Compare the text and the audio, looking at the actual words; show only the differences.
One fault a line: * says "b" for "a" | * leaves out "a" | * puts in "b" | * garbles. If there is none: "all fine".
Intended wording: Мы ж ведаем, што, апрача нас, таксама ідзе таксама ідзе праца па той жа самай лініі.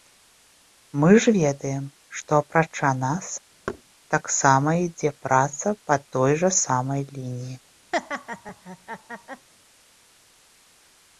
* leaves out "таксама ідзе"